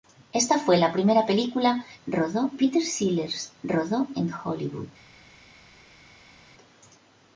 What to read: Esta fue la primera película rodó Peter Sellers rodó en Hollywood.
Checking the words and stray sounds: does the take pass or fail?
pass